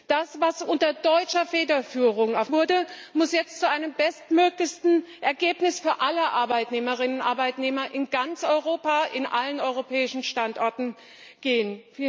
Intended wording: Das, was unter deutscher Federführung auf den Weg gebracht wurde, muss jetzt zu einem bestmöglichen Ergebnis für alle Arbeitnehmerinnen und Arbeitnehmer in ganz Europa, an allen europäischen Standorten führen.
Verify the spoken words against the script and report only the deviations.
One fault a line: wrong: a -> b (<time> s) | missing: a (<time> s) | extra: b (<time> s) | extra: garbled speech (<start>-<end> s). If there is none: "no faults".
missing: den Weg gebracht (2.5 s)